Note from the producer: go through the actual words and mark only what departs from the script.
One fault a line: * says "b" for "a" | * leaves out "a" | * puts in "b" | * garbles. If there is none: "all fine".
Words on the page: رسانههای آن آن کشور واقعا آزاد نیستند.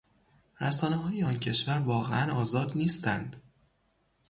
* leaves out "آن"